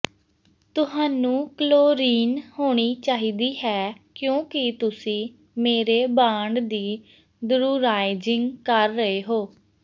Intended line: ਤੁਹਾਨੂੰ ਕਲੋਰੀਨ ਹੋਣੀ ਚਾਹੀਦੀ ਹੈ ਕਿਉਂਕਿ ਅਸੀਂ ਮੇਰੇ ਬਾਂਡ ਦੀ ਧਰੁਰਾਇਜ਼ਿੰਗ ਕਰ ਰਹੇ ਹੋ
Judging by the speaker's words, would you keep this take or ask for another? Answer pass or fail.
fail